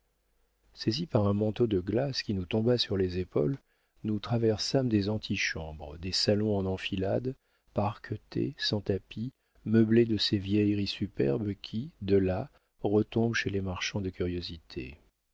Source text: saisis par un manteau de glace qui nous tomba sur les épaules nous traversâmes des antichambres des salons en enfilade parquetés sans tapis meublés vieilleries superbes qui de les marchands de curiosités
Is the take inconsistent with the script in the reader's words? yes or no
yes